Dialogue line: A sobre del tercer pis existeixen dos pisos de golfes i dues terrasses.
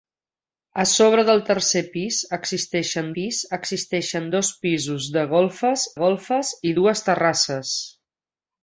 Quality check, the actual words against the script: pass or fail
fail